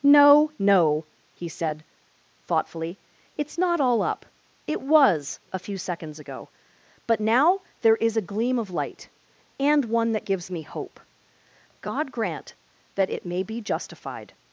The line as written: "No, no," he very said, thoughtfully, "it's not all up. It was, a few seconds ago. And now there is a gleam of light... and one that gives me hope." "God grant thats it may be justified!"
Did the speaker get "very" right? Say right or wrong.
wrong